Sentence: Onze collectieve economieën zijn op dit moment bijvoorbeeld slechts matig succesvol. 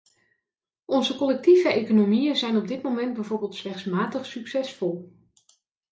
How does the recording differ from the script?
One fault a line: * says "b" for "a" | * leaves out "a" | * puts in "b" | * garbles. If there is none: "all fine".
all fine